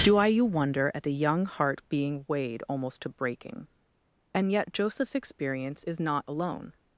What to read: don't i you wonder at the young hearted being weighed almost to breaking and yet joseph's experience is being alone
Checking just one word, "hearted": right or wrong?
wrong